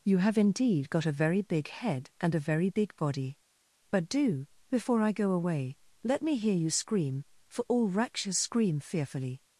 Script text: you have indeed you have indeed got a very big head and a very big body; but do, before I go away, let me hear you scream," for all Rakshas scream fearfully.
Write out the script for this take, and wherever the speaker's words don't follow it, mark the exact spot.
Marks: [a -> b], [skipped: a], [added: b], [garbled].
you have indeed [skipped: you have indeed] got a very big head and a very big body; but do, before I go away, let me hear you scream," for all Rakshas scream fearfully.